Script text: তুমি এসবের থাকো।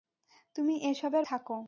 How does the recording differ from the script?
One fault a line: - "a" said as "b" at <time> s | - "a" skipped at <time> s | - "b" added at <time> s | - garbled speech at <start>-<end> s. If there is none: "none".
none